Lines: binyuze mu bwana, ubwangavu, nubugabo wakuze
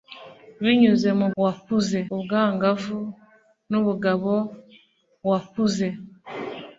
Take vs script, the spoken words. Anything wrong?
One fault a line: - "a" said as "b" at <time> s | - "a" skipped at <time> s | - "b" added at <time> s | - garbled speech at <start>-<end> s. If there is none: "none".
- "bwana" said as "wakuze" at 1.4 s